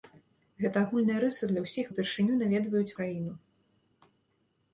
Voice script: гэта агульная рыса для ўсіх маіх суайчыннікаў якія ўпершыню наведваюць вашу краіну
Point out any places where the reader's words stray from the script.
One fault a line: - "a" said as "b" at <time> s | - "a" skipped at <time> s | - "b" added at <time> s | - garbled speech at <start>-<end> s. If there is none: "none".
- "маіх суайчыннікаў якія" skipped at 1.9 s
- "вашу" skipped at 2.9 s